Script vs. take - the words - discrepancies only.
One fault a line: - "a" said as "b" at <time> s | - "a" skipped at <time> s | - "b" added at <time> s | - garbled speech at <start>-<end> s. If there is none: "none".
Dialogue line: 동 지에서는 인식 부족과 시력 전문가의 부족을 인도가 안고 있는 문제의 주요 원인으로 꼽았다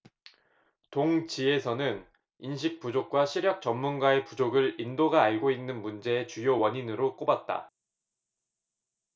none